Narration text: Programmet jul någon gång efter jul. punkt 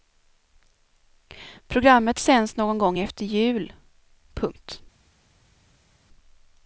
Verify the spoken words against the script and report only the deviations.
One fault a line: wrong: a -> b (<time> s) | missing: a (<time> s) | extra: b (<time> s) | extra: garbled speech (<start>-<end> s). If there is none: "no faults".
wrong: jul -> sänds (2.2 s)